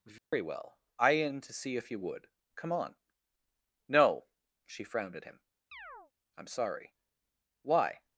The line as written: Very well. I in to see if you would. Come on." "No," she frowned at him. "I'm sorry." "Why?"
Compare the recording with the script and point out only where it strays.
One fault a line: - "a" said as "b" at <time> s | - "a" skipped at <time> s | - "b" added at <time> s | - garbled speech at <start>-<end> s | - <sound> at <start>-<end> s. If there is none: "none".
- dropout at 0.2-0.3 s
- chirp at 5.7-6.1 s